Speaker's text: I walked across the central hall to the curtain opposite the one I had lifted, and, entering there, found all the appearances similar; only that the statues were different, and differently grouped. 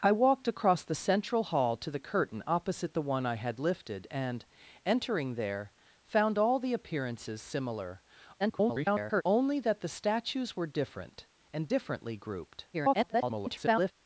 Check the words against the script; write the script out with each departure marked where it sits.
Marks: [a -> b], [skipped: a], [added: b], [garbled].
I walked across the central hall to the curtain opposite the one I had lifted, and, entering there, found all the appearances similar; [garbled] only that the statues were different, and differently grouped. [garbled]